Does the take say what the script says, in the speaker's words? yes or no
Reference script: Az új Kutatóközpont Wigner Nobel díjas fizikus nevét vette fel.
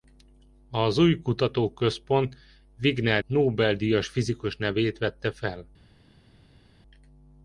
yes